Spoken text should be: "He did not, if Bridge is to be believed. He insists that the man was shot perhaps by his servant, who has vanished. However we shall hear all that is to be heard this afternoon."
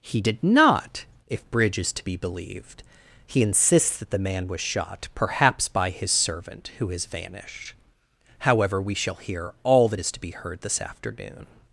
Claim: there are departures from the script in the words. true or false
false